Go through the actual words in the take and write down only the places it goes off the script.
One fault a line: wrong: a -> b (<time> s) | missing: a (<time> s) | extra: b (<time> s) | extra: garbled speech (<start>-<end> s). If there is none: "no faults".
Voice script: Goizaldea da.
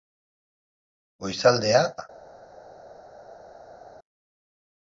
no faults